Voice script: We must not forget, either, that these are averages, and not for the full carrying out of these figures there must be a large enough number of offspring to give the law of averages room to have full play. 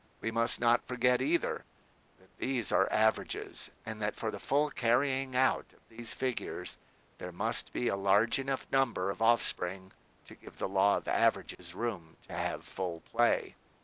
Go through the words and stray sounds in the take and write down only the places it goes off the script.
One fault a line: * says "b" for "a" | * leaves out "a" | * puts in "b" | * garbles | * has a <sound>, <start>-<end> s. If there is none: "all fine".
* says "that" for "not"
* has a dropout, 11.5-11.6 s